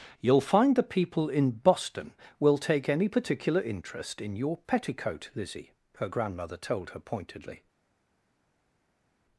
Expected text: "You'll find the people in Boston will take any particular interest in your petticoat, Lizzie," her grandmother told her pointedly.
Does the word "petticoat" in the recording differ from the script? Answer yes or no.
no